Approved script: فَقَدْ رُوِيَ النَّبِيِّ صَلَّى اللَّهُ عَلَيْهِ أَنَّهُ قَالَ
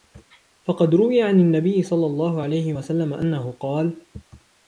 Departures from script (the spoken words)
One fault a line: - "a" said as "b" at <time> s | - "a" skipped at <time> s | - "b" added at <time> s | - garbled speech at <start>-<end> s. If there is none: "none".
- "عَنْ" added at 1.2 s
- "وَسَلَّمَ" added at 2.7 s